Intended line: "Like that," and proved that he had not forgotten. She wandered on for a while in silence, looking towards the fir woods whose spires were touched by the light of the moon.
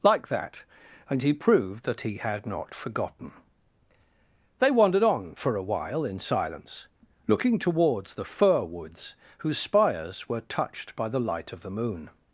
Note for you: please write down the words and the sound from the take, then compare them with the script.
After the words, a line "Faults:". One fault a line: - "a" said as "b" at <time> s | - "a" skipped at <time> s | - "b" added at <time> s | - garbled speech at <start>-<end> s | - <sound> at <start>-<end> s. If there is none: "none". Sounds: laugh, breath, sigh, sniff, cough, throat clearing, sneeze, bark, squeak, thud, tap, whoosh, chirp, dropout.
"Like that," and he proved that he had not forgotten. They wandered on for a while in silence, looking towards the fir woods whose spires were touched by the light of the moon.
Faults:
- "he" added at 1.2 s
- "She" said as "They" at 4.6 s